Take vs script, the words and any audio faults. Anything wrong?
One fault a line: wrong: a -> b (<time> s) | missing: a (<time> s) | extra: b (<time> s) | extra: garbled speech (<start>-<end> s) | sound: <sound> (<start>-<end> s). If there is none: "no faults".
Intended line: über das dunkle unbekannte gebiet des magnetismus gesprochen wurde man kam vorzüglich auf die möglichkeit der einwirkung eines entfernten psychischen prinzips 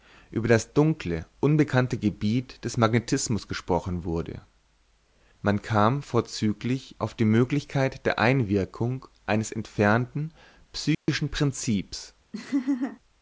sound: dropout (10.9-11.1 s)
sound: laugh (12.3-13.0 s)